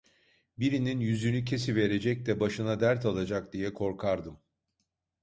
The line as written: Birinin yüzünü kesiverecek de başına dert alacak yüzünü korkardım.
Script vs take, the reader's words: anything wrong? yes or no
yes